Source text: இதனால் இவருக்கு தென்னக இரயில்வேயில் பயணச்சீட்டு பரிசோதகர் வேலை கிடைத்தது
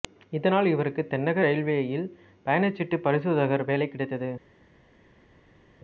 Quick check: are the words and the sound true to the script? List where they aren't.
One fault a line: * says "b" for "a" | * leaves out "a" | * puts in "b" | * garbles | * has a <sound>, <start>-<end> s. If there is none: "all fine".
all fine